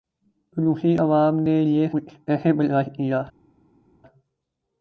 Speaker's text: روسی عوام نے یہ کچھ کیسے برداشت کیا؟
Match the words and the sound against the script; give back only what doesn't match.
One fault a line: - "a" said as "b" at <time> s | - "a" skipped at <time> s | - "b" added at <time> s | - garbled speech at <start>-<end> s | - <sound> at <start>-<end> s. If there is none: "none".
none